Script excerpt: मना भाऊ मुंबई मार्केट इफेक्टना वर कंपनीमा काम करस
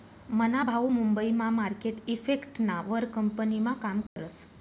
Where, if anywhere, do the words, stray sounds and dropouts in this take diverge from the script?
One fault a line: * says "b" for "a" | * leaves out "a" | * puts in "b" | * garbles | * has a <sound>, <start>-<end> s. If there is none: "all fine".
* puts in "मा"
* has a dropout, 4.1-4.2 s